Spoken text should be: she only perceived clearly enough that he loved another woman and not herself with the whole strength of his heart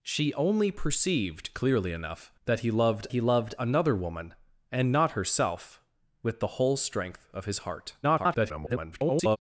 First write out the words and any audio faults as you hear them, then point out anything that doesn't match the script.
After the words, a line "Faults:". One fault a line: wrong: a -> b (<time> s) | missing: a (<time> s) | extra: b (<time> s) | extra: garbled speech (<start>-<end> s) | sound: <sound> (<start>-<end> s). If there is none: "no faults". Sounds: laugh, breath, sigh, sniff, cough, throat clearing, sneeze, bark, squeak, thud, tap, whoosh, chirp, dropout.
she only perceived clearly enough that he loved he loved another woman and not herself with the whole strength of his heart [garbled]
Faults:
extra: he loved (3.1 s)
extra: garbled speech (8.0-9.4 s)